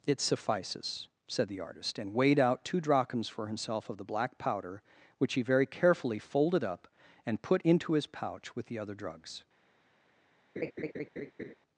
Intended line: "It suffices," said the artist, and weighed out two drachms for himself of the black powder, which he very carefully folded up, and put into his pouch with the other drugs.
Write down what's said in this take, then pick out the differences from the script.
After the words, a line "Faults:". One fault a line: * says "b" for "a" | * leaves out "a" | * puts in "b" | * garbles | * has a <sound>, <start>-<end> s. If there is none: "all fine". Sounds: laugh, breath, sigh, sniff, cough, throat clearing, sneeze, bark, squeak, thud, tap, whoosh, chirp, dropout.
"It suffices," said the artist, and weighed out two drachms for himself of the black powder, which he very carefully folded up, and put into his pouch with the other drugs.
Faults:
* has a laugh, 10.6-11.5 s